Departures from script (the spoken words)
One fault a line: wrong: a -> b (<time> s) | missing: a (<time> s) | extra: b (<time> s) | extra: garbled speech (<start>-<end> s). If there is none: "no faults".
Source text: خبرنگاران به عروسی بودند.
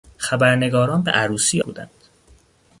no faults